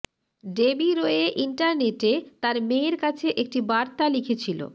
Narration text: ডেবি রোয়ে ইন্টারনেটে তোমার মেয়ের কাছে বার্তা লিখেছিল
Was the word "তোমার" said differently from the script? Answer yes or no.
yes